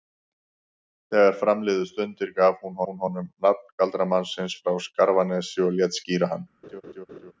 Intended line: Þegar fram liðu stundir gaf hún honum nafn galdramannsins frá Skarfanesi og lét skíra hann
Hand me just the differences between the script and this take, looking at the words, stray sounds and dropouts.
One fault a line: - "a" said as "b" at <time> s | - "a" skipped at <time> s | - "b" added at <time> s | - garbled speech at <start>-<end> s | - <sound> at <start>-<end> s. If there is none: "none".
- "hún" added at 2.9 s
- laugh at 6.6-7.3 s